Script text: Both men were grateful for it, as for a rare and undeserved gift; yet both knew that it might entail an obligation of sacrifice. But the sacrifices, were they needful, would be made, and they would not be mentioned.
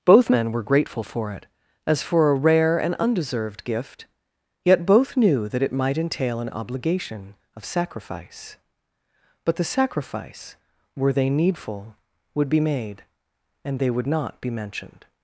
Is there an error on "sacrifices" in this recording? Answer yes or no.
yes